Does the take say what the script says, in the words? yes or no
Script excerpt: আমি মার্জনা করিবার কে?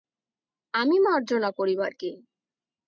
yes